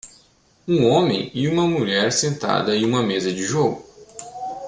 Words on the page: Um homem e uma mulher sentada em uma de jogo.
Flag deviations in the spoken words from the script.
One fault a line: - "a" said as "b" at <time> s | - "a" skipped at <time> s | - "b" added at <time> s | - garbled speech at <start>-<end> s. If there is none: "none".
- "mesa" added at 3.0 s